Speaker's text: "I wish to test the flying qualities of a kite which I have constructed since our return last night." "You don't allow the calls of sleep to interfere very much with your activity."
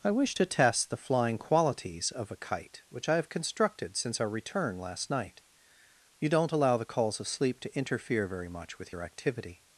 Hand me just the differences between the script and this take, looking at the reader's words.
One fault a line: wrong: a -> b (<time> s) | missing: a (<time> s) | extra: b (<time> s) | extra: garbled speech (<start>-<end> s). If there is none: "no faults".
no faults